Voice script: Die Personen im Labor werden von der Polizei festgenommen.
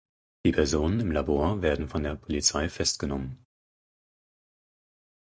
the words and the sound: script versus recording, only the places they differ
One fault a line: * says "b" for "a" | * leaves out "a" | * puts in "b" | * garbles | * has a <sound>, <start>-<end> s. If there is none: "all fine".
all fine